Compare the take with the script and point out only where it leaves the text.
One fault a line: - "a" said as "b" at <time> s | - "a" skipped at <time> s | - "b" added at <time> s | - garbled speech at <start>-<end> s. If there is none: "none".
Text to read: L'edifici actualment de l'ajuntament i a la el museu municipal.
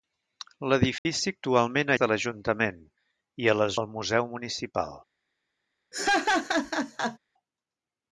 none